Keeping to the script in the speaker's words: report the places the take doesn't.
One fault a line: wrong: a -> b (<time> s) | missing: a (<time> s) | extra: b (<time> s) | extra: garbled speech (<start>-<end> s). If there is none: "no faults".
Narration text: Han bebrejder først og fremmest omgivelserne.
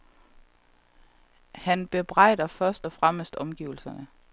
no faults